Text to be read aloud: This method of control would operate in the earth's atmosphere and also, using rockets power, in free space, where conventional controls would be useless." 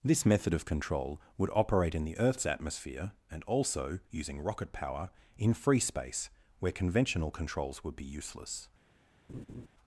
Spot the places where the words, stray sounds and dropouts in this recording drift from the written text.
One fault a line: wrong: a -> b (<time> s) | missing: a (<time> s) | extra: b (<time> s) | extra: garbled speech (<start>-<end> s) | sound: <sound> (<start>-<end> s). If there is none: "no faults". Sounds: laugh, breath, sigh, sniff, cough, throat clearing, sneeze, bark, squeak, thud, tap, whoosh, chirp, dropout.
wrong: rockets -> rocket (4.4 s)
sound: laugh (9.3-9.7 s)